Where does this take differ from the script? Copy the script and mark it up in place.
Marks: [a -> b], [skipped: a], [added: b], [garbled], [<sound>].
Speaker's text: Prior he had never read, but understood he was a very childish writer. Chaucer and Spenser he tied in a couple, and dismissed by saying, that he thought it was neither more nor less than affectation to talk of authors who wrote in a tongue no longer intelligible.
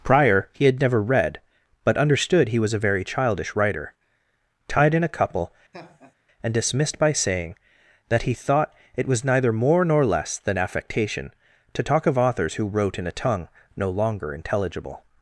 Prior he had never read, but understood he was a very childish writer. [skipped: Chaucer and Spenser he] tied in a couple, [laugh] and dismissed by saying, that he thought it was neither more nor less than affectation to talk of authors who wrote in a tongue no longer intelligible.